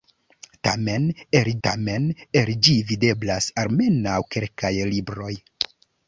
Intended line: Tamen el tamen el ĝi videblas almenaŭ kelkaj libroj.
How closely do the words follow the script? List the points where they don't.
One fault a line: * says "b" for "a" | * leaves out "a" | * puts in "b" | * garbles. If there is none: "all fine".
all fine